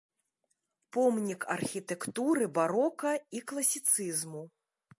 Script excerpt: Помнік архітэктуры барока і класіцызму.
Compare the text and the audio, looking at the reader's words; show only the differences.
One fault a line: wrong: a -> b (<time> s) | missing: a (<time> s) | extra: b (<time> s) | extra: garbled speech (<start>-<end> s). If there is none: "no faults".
no faults